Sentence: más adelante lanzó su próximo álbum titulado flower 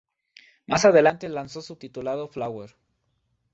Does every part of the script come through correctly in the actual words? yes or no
no